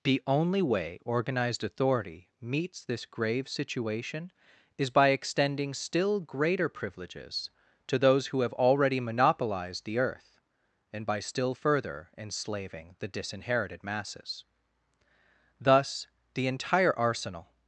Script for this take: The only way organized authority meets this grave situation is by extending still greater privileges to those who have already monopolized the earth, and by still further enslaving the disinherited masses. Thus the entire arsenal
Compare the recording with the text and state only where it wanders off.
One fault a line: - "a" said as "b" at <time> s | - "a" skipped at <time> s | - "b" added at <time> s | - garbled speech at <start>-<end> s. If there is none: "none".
none